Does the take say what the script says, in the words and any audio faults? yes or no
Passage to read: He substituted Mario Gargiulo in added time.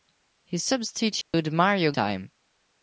no